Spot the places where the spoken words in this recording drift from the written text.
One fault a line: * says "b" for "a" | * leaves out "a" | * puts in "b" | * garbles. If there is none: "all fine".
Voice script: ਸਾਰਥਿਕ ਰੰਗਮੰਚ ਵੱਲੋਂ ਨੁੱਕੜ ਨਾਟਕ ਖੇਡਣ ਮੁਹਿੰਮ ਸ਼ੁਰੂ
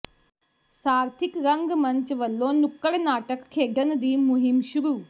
* puts in "ਦੀ"